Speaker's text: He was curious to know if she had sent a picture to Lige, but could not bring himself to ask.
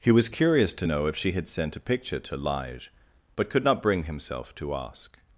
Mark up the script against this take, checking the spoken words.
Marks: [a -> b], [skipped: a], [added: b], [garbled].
He was curious to know if she had sent a picture to Lige, but could not bring himself to ask.